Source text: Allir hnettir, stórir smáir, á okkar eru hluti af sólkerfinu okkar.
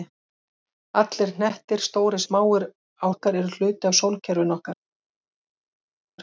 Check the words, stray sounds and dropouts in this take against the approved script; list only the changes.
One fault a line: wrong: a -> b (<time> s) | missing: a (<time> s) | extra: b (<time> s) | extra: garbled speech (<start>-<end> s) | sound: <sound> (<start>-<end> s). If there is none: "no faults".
no faults